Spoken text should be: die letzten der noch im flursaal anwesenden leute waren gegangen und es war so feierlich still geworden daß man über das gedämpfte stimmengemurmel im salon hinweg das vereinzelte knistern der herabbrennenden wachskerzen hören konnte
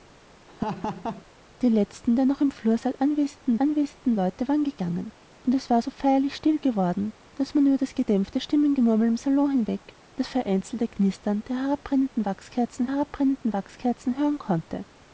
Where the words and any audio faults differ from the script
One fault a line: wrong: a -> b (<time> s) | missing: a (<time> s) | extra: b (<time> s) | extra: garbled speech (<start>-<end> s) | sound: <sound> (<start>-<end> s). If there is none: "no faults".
sound: laugh (0.5-1.2 s)
extra: anwesenden (3.6 s)
extra: herabbrennenden wachskerzen (12.9 s)